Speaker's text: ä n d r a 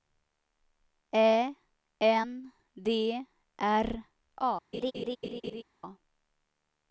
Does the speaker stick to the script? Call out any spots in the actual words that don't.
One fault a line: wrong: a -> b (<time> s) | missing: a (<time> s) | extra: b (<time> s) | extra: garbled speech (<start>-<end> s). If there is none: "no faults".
no faults